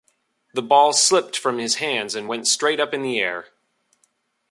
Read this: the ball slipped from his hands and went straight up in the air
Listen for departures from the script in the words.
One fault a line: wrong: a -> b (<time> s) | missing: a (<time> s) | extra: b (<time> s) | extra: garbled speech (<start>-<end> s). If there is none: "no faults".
no faults